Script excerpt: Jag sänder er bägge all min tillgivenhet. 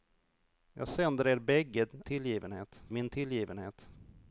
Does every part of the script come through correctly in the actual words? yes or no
no